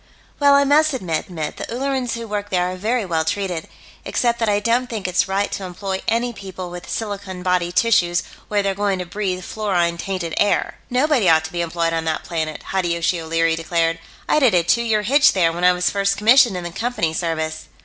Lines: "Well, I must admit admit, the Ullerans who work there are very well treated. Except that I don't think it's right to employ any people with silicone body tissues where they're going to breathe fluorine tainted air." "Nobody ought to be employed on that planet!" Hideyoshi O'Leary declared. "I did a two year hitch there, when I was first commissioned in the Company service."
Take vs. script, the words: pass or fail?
pass